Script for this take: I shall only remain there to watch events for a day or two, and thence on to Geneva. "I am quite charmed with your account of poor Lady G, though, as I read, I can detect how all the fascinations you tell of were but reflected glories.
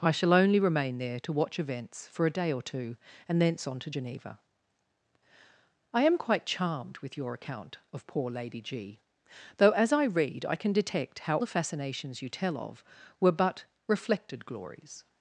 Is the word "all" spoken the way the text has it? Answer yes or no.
no